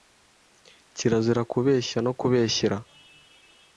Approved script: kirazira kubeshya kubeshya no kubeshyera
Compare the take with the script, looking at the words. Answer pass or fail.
fail